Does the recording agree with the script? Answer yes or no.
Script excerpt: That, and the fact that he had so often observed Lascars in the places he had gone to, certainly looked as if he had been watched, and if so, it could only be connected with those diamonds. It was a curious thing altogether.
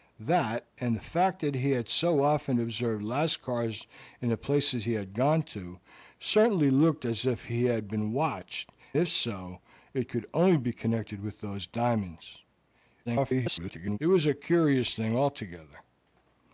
no